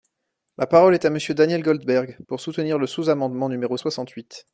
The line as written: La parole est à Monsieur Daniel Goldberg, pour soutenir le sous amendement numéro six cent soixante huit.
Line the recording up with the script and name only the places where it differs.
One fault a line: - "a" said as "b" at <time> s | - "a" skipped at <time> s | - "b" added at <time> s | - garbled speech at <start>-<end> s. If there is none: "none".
- "six cent" skipped at 3.8 s